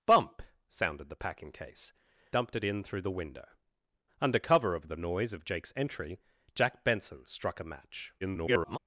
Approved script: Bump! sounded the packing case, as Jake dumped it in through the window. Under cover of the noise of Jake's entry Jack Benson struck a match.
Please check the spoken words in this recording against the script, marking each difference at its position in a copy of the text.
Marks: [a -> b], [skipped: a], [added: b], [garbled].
Bump! sounded the packing case, [skipped: as Jake] dumped it in through the window. Under cover of the noise of Jake's entry Jack Benson struck a match. [garbled]